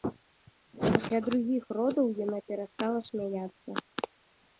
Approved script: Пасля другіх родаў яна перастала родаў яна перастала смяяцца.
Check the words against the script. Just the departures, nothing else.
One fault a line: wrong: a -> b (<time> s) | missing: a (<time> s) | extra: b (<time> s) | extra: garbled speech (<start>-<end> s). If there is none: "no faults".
missing: родаў яна перастала (3.0 s)